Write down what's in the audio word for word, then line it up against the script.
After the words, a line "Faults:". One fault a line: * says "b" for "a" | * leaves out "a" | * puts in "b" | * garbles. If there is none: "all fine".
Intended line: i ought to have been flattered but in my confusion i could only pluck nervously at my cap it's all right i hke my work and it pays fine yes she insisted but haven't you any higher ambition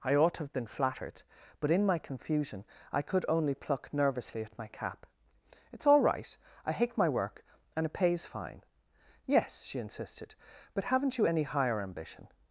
i ought to have been flattered but in my confusion i could only pluck nervously at my cap it's all right i hate my work and it pays fine yes she insisted but haven't you any higher ambition
Faults:
* says "hate" for "hke"